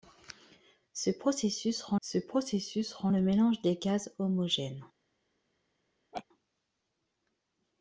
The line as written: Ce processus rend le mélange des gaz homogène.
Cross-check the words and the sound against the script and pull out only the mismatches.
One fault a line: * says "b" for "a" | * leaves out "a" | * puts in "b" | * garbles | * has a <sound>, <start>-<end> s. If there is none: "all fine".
* puts in "ce processus rend"
* has a laugh, 6.1-6.3 s